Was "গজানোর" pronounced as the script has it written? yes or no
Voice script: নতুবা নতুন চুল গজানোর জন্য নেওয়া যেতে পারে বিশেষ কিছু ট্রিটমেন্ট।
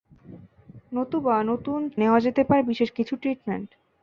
no